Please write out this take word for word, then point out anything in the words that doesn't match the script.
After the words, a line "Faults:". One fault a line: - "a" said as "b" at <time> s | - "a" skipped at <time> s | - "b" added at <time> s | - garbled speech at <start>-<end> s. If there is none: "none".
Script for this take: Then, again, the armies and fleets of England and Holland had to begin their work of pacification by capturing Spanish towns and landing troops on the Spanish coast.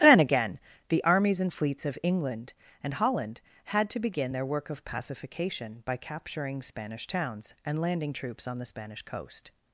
Then, again, the armies and fleets of England and Holland had to begin their work of pacification by capturing Spanish towns and landing troops on the Spanish coast.
Faults:
none